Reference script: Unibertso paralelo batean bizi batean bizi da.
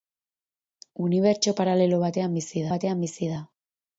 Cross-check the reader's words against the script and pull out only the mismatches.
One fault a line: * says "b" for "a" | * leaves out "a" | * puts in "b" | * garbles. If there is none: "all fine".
all fine